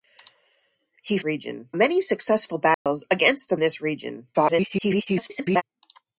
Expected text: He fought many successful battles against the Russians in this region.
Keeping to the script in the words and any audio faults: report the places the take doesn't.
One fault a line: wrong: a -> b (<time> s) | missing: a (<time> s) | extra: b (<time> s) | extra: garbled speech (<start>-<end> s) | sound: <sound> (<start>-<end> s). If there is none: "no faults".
wrong: fought -> region (1.2 s)
sound: dropout (2.7-2.9 s)
missing: Russians in (3.6 s)
extra: garbled speech (4.3-5.6 s)